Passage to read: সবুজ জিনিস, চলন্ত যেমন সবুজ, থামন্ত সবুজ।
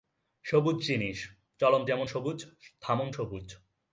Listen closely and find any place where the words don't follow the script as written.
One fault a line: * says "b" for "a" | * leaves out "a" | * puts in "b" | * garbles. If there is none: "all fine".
all fine